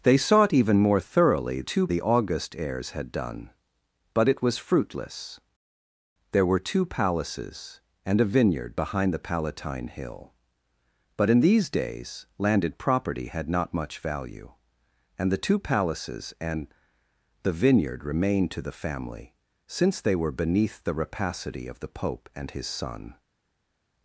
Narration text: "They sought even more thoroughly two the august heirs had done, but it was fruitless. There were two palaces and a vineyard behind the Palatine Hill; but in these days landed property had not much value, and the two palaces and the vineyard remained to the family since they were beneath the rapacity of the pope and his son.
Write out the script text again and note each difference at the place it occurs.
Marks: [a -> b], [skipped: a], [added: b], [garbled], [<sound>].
"They sought even more thoroughly two the august heirs had done, but it was fruitless. There were two palaces and a vineyard behind the Palatine Hill; but in these days landed property had not much value, and the two palaces and the vineyard remained to the family since they were beneath the rapacity of the pope and his son.